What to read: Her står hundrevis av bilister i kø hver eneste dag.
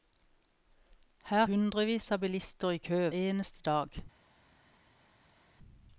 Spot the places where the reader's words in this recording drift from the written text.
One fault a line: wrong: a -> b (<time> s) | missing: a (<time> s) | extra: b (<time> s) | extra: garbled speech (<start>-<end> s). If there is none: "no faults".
missing: står (1.4 s)
missing: hver (3.1 s)